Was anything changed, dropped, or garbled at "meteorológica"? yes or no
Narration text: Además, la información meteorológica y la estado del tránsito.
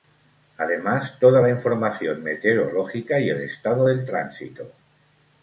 no